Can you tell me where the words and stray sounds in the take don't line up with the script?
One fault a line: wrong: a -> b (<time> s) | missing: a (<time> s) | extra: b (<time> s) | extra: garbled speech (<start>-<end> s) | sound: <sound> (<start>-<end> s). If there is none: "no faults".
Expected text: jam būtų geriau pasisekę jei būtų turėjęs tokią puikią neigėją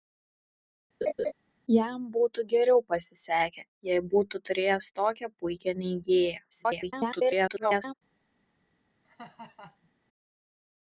sound: laugh (1.0-1.3 s)
extra: garbled speech (6.5-7.9 s)
sound: laugh (9.0-9.9 s)